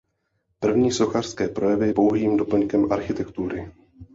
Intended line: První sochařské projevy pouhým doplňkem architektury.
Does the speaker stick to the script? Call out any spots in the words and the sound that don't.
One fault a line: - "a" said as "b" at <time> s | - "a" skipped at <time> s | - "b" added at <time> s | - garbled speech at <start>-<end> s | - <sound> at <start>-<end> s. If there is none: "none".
none